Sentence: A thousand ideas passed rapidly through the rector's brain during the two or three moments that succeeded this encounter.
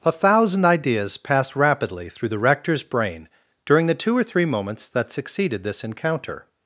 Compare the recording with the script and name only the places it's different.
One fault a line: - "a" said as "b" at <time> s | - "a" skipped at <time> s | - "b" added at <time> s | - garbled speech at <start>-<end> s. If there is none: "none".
none